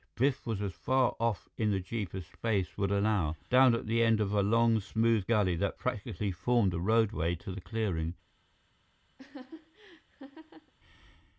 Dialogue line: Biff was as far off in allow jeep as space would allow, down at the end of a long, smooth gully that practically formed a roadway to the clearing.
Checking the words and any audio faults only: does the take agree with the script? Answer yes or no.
no